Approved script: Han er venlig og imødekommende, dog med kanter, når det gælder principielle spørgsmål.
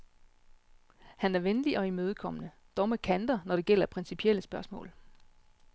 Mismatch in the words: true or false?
false